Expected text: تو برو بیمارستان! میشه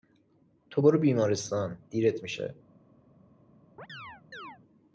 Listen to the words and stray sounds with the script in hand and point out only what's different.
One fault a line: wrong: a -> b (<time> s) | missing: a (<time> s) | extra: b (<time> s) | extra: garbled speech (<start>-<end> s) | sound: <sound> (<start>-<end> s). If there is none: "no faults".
extra: دیرت (1.9 s)
sound: chirp (3.8-4.6 s)